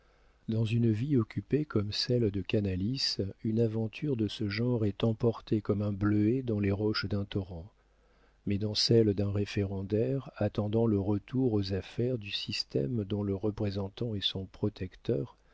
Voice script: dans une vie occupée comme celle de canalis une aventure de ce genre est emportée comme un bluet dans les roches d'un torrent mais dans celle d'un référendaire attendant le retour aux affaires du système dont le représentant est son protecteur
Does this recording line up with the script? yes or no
yes